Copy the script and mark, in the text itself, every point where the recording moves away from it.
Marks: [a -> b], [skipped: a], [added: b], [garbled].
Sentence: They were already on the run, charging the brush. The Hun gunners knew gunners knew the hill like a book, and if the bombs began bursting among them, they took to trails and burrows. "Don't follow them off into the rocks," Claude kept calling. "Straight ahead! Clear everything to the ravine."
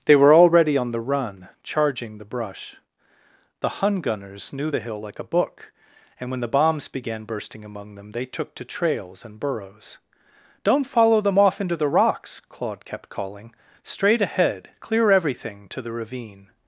They were already on the run, charging the brush. The Hun gunners knew [skipped: gunners knew] the hill like a book, and [if -> when] the bombs began bursting among them, they took to trails and burrows. "Don't follow them off into the rocks," Claude kept calling. "Straight ahead! Clear everything to the ravine."